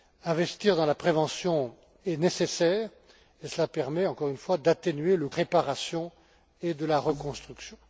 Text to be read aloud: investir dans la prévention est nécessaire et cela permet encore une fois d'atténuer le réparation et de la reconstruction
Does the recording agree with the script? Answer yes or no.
yes